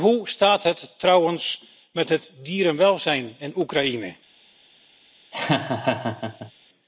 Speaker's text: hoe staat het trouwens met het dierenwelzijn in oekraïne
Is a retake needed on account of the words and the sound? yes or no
yes